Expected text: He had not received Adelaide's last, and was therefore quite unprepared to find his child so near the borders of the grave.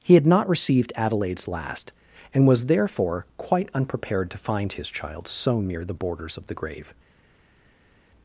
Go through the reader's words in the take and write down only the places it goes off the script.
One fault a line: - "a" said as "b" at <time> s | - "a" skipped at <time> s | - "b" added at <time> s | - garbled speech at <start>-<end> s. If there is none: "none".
none